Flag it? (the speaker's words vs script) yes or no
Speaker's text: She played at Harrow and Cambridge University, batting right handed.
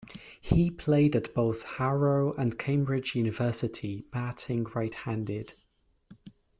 yes